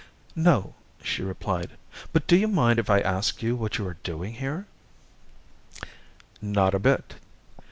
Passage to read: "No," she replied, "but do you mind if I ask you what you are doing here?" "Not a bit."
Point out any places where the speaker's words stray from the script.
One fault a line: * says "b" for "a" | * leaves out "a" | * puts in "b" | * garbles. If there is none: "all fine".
all fine